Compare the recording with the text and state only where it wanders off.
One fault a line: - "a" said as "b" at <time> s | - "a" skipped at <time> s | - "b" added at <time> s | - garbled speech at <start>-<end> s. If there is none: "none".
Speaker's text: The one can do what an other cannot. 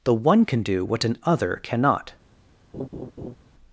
none